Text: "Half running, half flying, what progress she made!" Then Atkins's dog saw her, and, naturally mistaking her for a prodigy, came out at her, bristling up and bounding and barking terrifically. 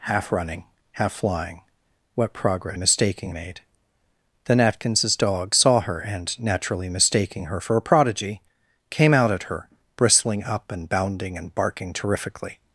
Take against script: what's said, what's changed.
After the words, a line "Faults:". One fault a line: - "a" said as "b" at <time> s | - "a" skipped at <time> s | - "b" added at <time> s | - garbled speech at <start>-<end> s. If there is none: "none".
"Half running, half flying, what progress mistaking made!" Then Atkins's dog saw her, and, naturally mistaking her for a prodigy, came out at her, bristling up and bounding and barking terrifically.
Faults:
- "she" said as "mistaking" at 2.8 s